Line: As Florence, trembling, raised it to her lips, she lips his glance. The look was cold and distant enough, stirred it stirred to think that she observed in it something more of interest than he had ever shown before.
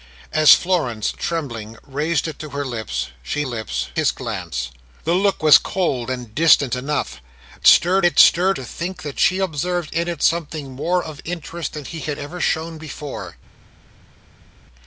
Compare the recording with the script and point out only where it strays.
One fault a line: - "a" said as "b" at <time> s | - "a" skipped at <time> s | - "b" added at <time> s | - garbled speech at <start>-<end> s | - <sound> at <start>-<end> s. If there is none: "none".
none